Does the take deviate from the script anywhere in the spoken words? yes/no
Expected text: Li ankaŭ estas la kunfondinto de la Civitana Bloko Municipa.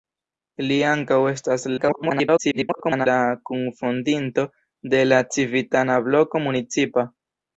yes